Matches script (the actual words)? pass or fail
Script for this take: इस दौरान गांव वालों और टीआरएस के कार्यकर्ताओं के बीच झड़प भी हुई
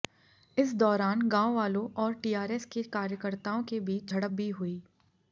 pass